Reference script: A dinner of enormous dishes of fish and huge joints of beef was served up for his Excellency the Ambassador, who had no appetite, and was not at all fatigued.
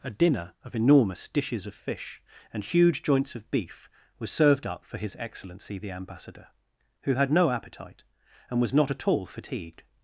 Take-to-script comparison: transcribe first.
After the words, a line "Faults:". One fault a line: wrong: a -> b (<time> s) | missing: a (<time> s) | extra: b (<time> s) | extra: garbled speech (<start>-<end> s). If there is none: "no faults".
A dinner of enormous dishes of fish and huge joints of beef was served up for his Excellency the Ambassador, who had no appetite, and was not at all fatigued.
Faults:
no faults